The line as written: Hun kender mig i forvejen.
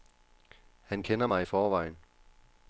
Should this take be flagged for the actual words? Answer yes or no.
yes